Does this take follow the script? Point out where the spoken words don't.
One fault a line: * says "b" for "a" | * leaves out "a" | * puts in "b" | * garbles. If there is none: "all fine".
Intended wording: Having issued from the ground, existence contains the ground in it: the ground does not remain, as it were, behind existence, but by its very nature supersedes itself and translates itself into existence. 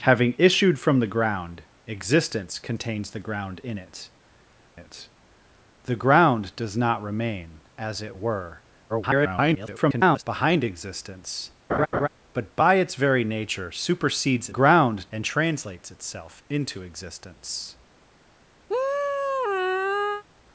* puts in "it"
* garbles
* says "ground" for "itself"